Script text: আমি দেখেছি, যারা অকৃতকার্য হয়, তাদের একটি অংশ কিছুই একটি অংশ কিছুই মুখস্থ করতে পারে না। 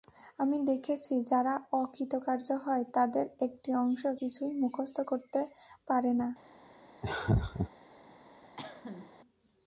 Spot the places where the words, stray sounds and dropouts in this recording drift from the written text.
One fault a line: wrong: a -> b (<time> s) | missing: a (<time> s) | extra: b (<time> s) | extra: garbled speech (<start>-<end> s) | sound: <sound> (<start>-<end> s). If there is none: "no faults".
missing: একটি অংশ কিছুই (4.5 s)
sound: laugh (7.0-7.7 s)
sound: cough (8.6-9.1 s)